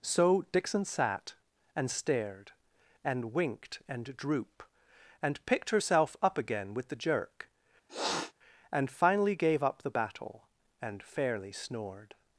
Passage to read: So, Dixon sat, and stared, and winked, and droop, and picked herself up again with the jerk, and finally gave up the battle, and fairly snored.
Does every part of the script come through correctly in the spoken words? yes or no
yes